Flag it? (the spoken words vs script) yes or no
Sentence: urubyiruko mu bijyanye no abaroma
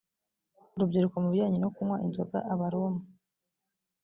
yes